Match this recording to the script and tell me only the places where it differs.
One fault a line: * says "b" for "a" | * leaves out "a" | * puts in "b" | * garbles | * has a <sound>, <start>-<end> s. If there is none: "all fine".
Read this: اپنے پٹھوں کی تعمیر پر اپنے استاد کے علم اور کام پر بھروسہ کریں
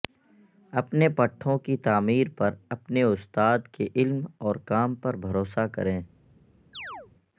* has a chirp, 6.7-7.1 s